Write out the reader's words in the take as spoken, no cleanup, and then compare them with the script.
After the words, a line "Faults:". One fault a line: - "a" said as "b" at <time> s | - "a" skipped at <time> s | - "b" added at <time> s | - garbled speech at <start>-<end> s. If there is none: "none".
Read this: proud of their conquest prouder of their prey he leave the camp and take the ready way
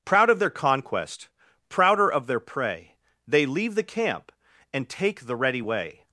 proud of their conquest prouder of their prey they leave the camp and take the ready way
Faults:
- "he" said as "they" at 3.3 s